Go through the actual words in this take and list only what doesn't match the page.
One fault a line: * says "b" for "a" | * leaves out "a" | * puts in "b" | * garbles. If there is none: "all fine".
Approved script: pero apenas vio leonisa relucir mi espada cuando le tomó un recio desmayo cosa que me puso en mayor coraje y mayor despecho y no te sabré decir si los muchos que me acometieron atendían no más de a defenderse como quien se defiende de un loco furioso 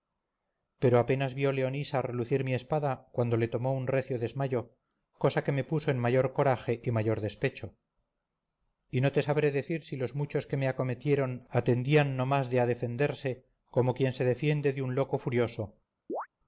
all fine